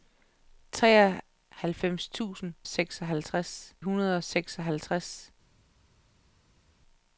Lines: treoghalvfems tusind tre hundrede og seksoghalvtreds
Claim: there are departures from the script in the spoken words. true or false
true